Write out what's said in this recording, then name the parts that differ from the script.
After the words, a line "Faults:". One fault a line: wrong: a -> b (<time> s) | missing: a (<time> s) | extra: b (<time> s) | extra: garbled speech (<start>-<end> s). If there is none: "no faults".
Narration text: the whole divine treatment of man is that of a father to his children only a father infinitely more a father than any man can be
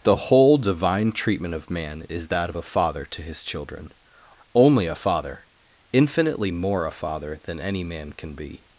the whole divine treatment of man is that of a father to his children only a father infinitely more a father than any man can be
Faults:
no faults